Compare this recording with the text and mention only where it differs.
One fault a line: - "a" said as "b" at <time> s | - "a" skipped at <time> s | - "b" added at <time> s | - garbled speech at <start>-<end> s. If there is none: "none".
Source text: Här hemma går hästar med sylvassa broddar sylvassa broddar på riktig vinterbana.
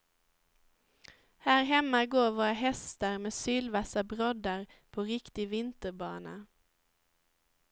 - "våra" added at 2.3 s
- "sylvassa broddar" skipped at 4.7 s